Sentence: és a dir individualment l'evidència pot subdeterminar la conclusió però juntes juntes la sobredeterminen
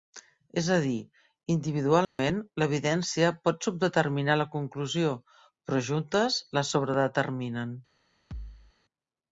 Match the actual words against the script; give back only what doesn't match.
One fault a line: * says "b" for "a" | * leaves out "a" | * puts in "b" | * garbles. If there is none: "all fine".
* leaves out "juntes"